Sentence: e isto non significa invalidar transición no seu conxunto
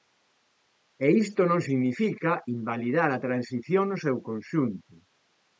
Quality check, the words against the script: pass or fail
fail